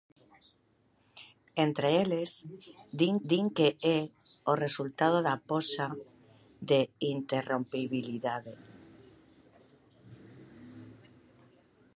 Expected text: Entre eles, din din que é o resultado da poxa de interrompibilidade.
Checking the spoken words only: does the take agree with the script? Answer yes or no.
yes